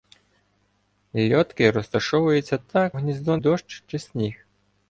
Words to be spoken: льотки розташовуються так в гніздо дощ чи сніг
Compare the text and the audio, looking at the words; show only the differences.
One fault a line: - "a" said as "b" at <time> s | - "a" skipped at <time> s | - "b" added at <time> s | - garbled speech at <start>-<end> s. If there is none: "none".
none